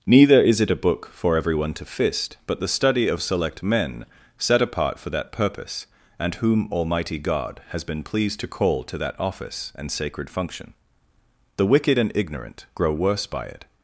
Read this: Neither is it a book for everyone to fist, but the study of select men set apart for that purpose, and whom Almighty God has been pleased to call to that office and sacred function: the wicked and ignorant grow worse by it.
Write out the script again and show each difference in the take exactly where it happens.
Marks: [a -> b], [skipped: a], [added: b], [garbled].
Neither is it a book for everyone to fist, but the study of select men set apart for that purpose, and whom Almighty God has been pleased to call to that office and sacred function: the wicked and ignorant grow worse by it.